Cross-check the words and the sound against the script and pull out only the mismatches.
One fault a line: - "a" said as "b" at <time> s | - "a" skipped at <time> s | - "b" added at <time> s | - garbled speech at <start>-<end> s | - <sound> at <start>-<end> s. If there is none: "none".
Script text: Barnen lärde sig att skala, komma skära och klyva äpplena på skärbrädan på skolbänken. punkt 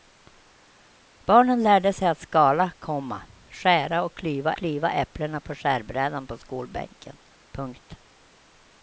- "klyva" added at 4.6 s